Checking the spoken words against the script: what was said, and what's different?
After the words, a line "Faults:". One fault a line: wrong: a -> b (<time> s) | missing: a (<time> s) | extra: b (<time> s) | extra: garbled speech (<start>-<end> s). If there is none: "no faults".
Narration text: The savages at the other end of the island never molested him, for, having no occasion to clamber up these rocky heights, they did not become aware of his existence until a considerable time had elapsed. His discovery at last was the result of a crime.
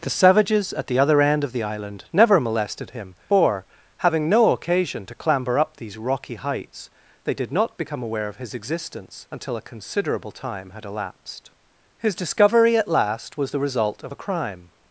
The savages at the other end of the island never molested him, for, having no occasion to clamber up these rocky heights, they did not become aware of his existence until a considerable time had elapsed. His discovery at last was the result of a crime.
Faults:
no faults